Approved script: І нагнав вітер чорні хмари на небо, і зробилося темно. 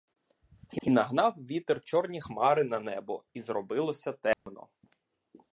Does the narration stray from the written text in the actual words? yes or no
yes